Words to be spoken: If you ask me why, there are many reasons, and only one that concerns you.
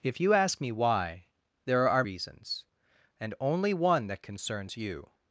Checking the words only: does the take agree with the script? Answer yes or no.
no